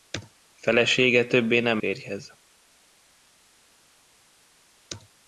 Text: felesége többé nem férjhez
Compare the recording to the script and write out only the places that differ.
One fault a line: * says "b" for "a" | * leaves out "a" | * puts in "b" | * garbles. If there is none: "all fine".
all fine